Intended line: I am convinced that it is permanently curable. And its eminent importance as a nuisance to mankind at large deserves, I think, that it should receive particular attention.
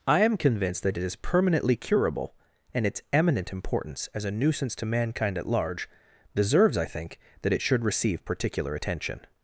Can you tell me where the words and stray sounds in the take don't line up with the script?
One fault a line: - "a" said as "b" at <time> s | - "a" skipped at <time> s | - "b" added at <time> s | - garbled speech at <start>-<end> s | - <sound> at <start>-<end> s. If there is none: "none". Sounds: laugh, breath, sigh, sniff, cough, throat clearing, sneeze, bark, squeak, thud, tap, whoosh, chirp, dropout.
none